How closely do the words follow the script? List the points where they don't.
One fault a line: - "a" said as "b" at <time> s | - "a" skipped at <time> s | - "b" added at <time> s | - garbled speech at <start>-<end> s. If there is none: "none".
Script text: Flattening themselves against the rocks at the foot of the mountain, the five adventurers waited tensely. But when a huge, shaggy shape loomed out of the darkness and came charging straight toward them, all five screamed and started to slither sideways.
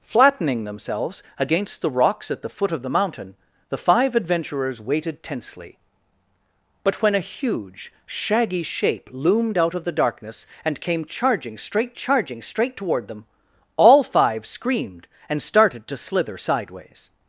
- "charging straight" added at 11.9 s